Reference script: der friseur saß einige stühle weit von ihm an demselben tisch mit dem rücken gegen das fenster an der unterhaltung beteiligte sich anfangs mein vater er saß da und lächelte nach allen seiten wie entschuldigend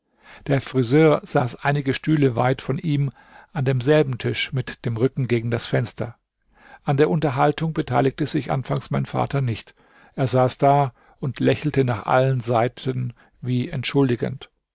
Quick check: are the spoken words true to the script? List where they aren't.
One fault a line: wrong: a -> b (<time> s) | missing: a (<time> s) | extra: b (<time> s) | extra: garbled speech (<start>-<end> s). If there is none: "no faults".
extra: nicht (9.4 s)